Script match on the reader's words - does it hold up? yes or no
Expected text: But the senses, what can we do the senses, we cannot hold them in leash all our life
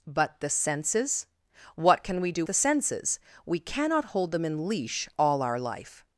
yes